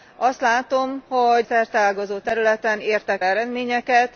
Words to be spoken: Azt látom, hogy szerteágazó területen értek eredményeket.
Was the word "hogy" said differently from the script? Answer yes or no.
no